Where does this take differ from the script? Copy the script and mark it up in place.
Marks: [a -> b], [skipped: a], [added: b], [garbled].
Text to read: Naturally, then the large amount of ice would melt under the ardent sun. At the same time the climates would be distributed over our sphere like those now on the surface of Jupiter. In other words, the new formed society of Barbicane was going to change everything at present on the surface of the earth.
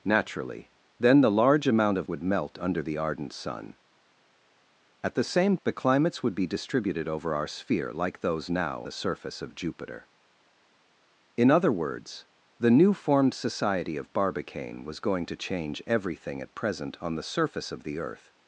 Naturally, then the large amount of [skipped: ice] would melt under the ardent sun. At the same [skipped: time] the climates would be distributed over our sphere like those now [skipped: on] the surface of Jupiter. In other words, the new formed society of Barbicane was going to change everything at present on the surface of the earth.